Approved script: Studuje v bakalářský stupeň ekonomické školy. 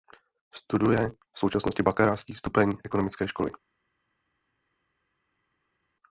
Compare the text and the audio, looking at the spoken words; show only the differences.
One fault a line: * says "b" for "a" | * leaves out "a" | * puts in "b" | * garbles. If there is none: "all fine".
* puts in "současnosti"